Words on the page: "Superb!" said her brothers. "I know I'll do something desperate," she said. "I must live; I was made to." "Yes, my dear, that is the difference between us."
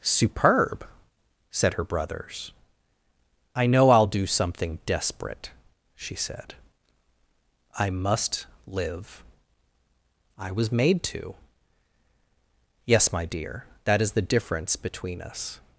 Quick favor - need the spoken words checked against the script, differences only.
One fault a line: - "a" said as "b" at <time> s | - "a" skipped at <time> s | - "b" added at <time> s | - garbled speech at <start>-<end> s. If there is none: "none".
none